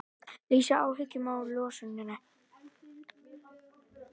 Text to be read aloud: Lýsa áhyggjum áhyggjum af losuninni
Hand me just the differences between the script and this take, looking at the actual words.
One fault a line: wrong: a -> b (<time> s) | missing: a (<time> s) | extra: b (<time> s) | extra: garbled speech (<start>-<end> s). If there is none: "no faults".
missing: áhyggjum (1.3 s)